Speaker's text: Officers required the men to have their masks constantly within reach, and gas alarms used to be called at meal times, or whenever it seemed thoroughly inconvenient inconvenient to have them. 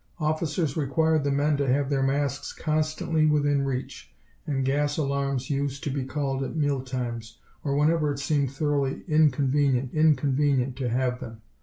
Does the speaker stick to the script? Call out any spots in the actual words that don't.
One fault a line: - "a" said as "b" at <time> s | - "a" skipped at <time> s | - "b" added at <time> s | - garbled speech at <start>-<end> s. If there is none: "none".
none